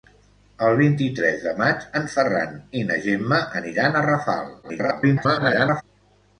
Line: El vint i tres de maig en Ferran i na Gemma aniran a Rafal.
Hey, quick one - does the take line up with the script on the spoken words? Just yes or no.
no